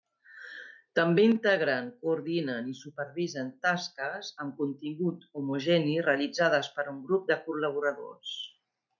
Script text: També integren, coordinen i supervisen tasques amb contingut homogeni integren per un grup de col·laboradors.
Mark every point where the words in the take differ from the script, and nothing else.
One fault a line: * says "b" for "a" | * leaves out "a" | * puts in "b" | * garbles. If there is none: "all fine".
* says "realitzades" for "integren"